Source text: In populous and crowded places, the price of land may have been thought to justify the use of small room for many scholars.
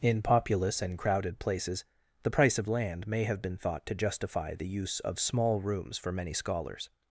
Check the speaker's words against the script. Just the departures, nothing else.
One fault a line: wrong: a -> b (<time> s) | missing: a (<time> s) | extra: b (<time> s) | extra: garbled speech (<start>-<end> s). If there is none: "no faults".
wrong: room -> rooms (5.6 s)